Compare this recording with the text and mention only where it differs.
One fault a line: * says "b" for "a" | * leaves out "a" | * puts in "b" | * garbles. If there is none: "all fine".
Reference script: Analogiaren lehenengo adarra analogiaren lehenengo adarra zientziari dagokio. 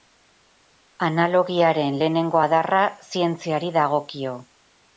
* leaves out "analogiaren lehenengo adarra"